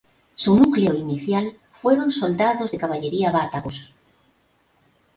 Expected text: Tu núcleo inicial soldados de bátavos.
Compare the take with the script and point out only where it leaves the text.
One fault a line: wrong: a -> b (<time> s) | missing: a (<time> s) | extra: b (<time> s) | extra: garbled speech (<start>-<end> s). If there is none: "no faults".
wrong: Tu -> Su (0.3 s)
extra: fueron (1.7 s)
extra: caballería (2.8 s)